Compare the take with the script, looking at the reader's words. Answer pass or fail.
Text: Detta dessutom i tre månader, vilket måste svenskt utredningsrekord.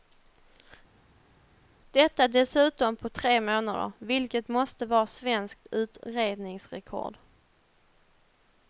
fail